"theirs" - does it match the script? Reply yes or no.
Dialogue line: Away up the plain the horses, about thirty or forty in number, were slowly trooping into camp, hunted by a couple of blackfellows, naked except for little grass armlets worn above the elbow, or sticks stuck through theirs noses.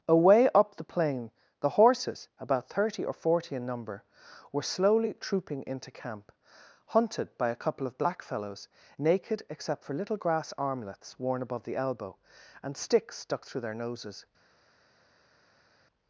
no